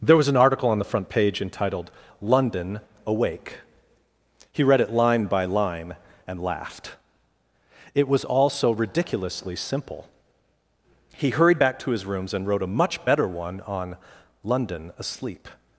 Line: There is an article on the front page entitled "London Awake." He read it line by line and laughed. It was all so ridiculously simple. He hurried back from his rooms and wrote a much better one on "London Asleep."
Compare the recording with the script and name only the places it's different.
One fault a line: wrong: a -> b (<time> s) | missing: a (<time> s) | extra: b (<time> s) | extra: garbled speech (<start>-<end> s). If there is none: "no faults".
wrong: is -> was (0.2 s)
wrong: from -> to (11.8 s)